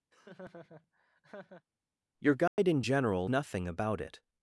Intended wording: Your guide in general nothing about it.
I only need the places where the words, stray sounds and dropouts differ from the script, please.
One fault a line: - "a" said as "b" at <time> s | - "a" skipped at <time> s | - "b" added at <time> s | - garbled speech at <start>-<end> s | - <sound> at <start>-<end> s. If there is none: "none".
- laugh at 0.1-1.7 s
- dropout at 2.5-2.6 s